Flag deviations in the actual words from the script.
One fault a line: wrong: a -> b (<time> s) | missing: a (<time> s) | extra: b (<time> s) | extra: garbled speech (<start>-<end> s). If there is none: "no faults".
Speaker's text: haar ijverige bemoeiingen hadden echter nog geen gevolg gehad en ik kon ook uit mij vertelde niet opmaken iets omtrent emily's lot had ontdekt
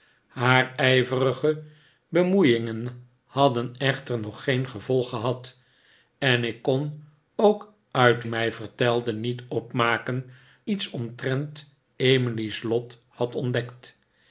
no faults